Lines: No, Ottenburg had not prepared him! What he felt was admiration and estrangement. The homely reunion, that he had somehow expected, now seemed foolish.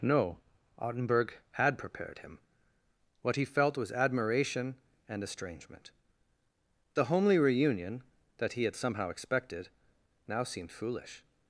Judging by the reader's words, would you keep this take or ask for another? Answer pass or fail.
fail